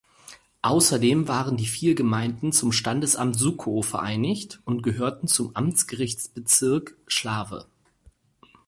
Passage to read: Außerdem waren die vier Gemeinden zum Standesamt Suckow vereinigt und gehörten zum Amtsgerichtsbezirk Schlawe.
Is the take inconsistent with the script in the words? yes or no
no